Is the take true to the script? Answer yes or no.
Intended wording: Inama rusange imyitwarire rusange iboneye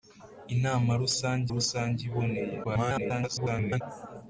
no